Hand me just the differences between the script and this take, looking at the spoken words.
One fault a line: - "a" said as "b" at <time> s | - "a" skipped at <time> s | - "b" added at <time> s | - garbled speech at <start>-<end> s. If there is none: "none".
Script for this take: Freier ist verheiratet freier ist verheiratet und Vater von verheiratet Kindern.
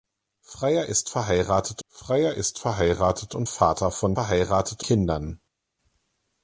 none